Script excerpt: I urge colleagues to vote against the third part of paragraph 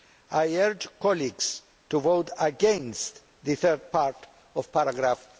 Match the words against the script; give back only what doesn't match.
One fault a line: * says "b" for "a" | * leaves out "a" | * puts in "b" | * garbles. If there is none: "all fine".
all fine